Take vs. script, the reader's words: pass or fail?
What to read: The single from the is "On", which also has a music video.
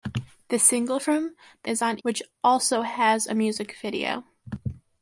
pass